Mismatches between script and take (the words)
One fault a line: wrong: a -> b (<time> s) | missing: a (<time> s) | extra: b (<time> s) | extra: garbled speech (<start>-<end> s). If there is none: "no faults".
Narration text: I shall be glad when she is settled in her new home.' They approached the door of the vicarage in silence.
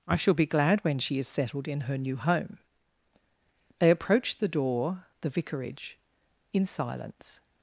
missing: of (5.0 s)